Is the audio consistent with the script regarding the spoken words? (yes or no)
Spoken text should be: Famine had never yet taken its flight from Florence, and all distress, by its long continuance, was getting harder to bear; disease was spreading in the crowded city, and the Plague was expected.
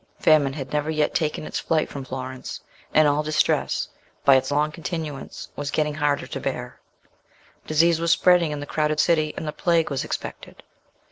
yes